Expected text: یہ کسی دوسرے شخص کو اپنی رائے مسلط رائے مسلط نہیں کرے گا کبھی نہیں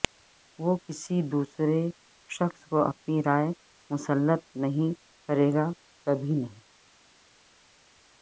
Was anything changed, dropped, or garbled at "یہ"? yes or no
yes